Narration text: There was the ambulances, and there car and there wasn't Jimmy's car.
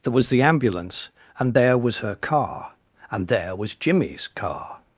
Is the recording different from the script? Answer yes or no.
yes